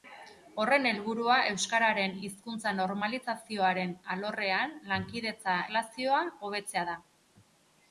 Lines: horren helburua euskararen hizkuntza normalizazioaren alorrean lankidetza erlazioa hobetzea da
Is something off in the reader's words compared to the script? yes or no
no